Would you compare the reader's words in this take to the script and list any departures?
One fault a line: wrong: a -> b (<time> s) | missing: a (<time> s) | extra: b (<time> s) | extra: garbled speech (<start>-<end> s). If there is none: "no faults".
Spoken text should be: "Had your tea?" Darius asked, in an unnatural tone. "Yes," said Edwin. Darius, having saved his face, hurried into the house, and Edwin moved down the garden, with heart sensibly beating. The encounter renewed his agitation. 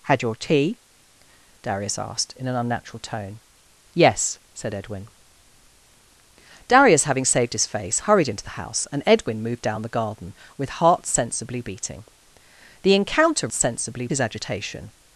wrong: renewed -> sensibly (13.5 s)